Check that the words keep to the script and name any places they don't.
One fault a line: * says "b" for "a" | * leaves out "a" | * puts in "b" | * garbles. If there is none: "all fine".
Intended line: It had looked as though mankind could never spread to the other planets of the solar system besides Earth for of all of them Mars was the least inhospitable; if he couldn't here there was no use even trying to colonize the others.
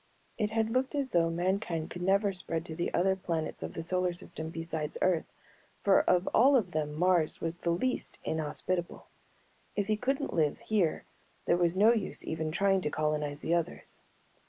* puts in "live"